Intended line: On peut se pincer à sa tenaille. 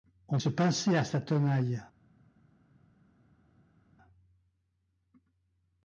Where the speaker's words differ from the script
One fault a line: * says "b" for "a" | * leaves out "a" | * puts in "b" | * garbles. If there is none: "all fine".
* leaves out "peut"